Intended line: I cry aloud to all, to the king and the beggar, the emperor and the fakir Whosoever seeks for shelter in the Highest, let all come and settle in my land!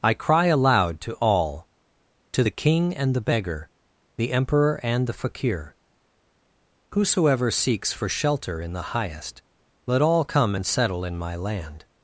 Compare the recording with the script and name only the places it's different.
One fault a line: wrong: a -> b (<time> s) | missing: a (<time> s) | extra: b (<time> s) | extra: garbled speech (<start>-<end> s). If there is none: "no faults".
no faults